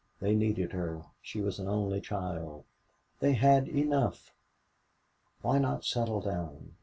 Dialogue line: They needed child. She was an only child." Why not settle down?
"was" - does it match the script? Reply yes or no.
yes